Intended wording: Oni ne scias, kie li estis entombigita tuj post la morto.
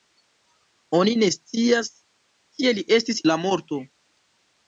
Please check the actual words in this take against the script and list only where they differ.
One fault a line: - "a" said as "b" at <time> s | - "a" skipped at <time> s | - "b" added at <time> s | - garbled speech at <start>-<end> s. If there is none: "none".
- "entombigita tuj post" skipped at 3.2 s